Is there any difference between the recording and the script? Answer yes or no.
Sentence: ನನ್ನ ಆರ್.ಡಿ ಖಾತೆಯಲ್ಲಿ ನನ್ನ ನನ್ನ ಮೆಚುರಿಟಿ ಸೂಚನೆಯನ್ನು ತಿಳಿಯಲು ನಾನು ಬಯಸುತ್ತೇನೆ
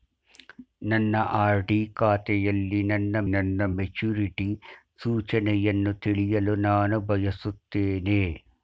no